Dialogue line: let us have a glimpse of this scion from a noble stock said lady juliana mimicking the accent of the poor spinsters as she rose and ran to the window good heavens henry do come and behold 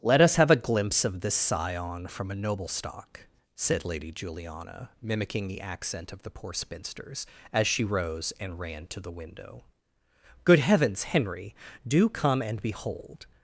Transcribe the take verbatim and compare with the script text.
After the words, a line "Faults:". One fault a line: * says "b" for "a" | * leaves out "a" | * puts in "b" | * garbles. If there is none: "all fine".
let us have a glimpse of this scion from a noble stock said lady juliana mimicking the accent of the poor spinsters as she rose and ran to the window good heavens henry do come and behold
Faults:
all fine